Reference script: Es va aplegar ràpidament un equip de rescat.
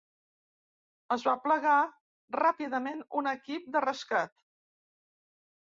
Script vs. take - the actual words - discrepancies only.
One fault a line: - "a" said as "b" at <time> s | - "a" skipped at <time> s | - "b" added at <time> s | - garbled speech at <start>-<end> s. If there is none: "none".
none